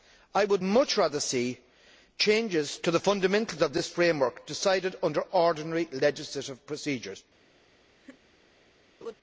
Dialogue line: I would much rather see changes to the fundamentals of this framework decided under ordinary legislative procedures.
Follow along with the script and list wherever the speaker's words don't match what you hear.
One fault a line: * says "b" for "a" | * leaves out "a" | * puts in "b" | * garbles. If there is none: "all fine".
all fine